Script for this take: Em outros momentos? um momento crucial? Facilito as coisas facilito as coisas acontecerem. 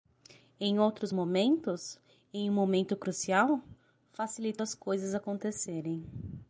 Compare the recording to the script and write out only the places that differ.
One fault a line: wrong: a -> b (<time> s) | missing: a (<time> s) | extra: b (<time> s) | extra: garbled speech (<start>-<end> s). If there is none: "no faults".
extra: em (2.3 s)
missing: facilito as coisas (5.1 s)